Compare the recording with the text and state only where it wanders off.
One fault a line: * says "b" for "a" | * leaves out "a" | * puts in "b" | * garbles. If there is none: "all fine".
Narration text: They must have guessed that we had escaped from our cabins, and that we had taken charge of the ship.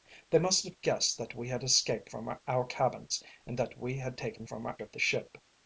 * says "from" for "charge"